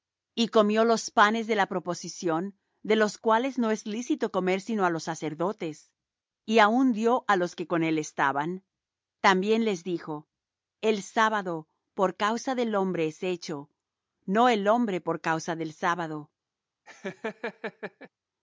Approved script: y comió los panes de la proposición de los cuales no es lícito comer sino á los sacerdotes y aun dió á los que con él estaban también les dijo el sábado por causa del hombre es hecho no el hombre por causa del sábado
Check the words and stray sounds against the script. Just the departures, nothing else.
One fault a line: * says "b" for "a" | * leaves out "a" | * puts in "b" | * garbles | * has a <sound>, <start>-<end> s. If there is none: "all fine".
* has a laugh, 16.9-18.1 s